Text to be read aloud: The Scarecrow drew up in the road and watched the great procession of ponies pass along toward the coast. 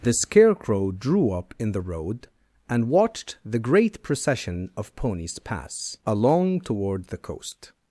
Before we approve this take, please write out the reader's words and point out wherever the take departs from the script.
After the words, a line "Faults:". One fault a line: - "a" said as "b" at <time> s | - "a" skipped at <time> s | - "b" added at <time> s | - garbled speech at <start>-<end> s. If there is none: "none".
The Scarecrow drew up in the road and watched the great procession of ponies pass along toward the coast.
Faults:
none